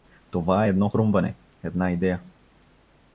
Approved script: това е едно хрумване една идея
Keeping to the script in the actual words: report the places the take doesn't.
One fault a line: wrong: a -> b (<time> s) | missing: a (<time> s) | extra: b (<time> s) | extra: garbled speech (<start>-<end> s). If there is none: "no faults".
no faults